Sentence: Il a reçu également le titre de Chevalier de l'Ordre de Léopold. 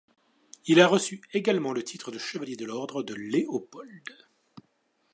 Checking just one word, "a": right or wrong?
right